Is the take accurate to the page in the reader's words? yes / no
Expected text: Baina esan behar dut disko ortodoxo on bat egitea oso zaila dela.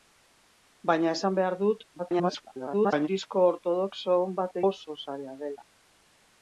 no